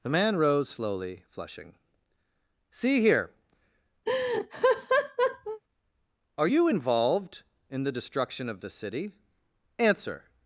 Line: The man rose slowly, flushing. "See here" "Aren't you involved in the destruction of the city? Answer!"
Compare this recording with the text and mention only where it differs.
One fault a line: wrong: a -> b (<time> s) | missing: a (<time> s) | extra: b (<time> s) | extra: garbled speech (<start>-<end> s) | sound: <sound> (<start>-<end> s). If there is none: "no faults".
sound: laugh (4.1-5.6 s)
wrong: Aren't -> Are (6.4 s)